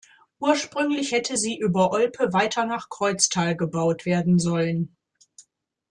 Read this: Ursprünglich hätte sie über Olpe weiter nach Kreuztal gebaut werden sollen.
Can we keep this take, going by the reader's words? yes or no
yes